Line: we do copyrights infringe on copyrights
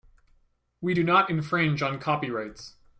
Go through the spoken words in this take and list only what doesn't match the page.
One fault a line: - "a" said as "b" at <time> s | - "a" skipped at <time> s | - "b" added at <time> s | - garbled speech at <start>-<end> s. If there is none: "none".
- "copyrights" said as "not" at 1.0 s